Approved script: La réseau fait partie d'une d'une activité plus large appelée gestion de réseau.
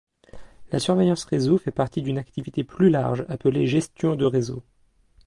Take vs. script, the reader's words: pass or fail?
fail